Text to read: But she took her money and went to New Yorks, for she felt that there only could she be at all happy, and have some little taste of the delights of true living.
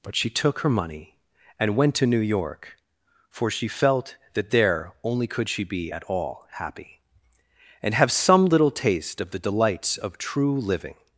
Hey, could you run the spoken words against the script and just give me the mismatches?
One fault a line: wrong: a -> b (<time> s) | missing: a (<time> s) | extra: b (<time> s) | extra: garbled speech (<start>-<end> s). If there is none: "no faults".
wrong: Yorks -> York (2.2 s)